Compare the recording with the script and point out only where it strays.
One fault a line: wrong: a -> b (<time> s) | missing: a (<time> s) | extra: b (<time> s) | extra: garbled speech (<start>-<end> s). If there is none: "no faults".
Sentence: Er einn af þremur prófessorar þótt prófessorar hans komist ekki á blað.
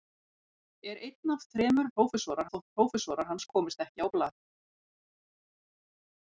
no faults